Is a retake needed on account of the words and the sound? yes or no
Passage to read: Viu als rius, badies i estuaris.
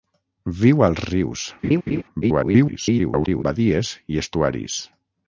yes